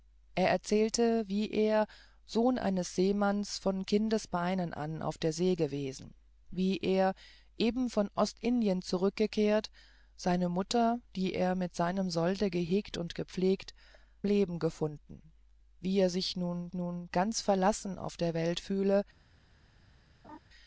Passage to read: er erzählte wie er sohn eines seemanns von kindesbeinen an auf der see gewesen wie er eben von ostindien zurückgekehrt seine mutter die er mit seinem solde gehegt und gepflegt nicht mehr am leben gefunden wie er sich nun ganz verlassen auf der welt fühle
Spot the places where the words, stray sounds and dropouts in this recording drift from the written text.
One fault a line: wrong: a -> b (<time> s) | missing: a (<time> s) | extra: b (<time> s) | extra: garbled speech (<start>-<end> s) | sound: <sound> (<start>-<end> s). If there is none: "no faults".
missing: nicht mehr am (13.7 s)
extra: nun (16.7 s)
sound: laugh (20.2-20.4 s)